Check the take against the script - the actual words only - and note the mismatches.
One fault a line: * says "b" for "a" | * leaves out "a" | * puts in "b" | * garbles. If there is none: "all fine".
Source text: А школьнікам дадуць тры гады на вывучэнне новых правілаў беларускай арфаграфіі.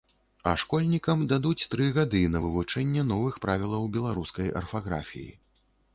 all fine